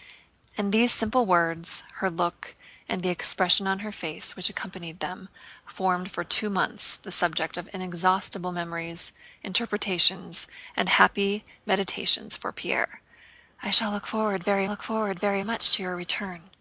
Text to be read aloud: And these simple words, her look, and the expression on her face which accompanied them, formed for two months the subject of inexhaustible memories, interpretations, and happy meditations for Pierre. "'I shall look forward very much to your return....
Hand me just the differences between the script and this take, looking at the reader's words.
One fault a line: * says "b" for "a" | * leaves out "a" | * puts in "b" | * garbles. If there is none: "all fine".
* puts in "look forward very"